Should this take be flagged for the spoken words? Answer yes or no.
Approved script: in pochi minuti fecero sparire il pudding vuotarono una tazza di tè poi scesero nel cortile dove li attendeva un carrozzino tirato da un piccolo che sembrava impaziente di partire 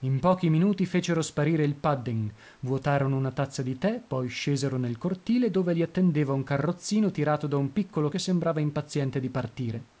no